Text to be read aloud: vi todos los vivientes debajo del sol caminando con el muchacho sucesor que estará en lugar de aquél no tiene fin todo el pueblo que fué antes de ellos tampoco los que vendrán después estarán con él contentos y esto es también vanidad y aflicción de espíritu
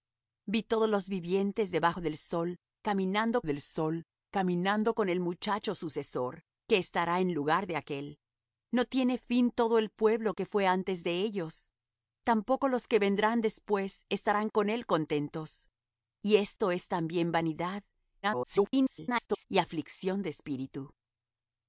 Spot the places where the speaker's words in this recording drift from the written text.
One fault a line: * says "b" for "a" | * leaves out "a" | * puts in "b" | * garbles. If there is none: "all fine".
* puts in "del sol caminando"
* garbles